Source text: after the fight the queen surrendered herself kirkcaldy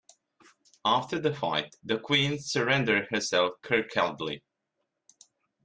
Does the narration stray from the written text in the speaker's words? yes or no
no